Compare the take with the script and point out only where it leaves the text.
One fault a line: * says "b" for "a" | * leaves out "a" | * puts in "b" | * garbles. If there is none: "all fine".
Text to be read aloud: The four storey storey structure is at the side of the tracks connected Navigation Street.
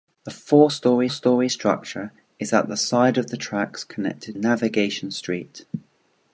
all fine